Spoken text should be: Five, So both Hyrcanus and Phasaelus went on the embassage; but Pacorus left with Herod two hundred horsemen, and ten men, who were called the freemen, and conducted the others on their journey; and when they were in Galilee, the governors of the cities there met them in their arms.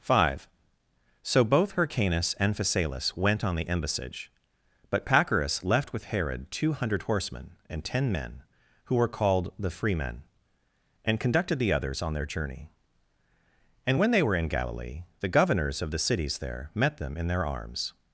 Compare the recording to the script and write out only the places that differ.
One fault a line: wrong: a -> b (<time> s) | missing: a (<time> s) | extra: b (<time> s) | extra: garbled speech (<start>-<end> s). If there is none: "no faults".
no faults